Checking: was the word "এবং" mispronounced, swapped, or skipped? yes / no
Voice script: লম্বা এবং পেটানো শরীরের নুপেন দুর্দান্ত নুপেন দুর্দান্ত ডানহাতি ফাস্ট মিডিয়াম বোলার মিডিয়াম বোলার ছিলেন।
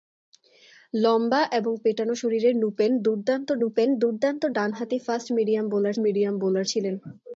no